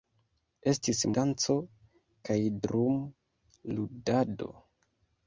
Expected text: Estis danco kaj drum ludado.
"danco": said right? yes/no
yes